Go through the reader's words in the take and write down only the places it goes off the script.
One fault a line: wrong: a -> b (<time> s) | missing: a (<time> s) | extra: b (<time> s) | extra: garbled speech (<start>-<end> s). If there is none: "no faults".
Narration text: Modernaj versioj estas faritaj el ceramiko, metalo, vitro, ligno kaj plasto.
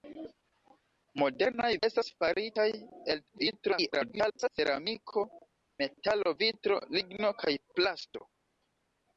missing: versioj (1.7 s)
extra: garbled speech (3.3-4.5 s)